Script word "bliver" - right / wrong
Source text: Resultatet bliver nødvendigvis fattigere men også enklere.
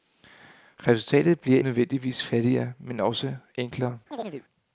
right